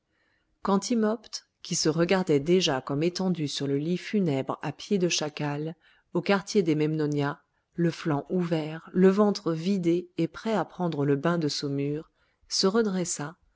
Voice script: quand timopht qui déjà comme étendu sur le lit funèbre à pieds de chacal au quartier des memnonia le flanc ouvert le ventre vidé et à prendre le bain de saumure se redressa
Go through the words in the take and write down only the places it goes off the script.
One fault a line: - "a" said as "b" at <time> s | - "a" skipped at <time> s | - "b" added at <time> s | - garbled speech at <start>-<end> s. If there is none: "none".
- "se regardait" added at 1.8 s
- "prêt" added at 10.3 s